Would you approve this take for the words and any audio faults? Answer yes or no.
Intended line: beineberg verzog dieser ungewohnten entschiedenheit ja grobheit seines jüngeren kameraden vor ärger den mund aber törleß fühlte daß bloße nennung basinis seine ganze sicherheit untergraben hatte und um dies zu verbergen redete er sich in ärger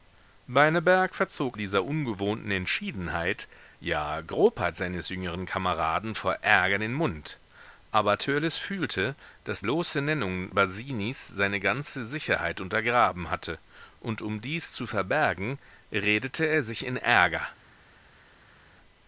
yes